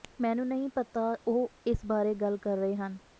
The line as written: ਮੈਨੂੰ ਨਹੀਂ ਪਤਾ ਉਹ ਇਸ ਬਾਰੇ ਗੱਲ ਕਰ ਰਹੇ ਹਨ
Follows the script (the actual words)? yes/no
yes